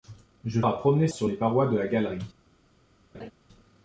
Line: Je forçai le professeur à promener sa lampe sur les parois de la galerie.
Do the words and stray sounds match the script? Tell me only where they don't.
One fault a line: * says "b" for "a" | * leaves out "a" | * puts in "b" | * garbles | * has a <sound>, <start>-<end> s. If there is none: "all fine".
* leaves out "forçai le professeur"
* leaves out "sa lampe"
* has a laugh, 3.1-3.3 s